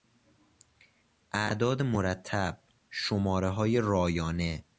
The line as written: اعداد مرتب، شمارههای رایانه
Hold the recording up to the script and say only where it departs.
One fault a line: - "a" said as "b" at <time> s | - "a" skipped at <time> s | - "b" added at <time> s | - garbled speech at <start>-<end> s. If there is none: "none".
none